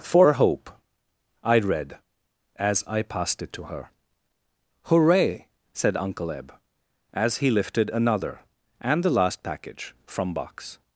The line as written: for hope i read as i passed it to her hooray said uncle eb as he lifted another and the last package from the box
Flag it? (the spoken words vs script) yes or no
yes